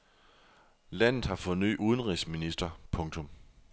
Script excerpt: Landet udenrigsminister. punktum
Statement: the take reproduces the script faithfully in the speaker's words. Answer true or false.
false